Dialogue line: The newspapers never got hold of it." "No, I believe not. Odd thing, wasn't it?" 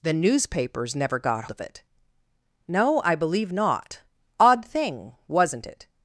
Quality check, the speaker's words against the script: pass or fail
fail